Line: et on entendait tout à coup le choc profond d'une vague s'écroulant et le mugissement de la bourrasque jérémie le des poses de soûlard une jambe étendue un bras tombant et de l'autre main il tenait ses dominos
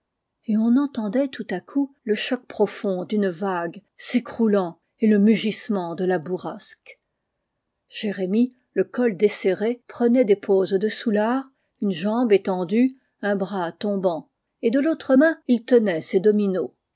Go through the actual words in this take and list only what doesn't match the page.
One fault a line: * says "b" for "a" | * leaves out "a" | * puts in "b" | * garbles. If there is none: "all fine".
* puts in "col desserré prenait"